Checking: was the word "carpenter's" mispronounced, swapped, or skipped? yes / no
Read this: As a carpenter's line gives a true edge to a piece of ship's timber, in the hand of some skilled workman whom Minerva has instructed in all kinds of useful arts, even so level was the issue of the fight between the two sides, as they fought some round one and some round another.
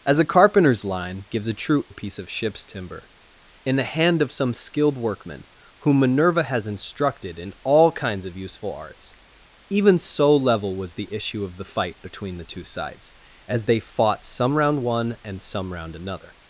no